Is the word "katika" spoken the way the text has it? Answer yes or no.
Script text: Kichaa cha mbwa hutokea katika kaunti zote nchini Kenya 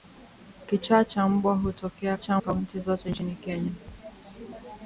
no